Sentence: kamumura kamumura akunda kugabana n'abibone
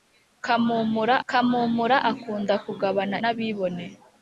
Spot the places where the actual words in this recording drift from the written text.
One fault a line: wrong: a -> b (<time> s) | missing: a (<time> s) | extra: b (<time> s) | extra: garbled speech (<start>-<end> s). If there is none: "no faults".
no faults